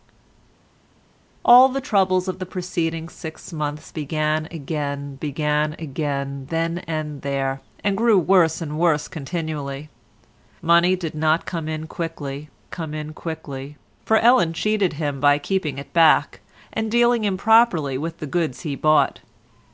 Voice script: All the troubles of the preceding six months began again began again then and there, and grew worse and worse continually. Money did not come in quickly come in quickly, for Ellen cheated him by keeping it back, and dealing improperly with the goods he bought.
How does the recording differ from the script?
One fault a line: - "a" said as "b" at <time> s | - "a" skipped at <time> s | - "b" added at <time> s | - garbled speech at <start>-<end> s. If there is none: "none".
none